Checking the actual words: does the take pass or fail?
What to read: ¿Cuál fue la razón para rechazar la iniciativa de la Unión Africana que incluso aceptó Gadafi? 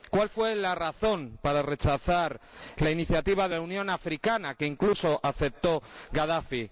pass